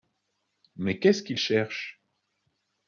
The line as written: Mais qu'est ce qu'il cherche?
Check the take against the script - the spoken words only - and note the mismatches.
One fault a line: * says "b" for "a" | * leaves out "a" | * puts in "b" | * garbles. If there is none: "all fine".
all fine